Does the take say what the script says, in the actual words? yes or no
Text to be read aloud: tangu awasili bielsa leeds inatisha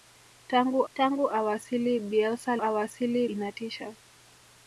no